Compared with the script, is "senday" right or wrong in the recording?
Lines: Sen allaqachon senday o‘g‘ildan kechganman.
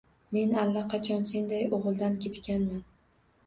right